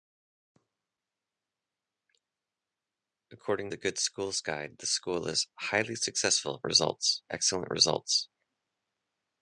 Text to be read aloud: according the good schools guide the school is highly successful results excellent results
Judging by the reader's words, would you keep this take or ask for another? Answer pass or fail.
pass